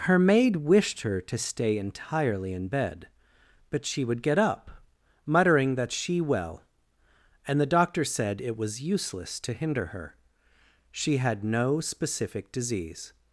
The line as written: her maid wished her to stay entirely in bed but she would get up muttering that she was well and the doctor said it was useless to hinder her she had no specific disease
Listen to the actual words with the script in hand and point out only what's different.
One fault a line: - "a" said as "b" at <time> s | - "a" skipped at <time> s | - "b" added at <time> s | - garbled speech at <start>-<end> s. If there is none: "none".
- "was" skipped at 6.2 s